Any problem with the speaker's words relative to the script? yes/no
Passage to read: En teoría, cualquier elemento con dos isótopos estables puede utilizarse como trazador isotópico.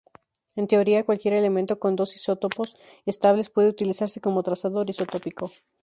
no